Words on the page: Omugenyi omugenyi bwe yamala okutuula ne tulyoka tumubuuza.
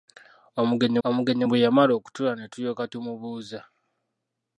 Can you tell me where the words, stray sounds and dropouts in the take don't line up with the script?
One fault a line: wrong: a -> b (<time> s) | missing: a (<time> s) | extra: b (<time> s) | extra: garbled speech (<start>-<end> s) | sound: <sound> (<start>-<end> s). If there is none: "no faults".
no faults